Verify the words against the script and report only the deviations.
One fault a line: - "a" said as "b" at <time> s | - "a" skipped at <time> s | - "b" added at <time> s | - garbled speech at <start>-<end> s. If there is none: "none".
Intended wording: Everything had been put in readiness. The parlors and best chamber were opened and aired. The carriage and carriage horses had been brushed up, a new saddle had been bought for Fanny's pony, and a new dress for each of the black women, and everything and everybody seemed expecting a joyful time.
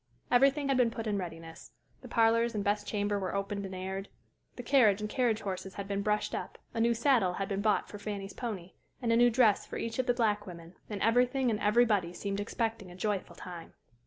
none